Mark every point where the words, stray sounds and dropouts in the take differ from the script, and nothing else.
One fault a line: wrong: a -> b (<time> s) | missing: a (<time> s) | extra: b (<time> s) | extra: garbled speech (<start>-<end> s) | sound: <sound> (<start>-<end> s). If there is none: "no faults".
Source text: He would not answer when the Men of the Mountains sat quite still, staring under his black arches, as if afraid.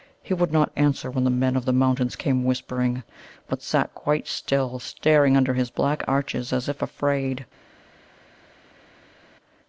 extra: came whispering but (2.1 s)